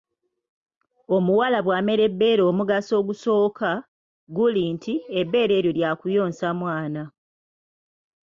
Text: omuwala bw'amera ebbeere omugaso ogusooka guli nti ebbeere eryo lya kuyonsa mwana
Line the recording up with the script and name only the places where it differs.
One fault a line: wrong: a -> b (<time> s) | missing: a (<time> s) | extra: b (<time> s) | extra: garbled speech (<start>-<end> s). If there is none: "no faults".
no faults